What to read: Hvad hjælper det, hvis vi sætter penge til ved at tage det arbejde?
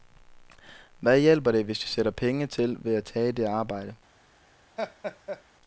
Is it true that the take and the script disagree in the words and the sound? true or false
true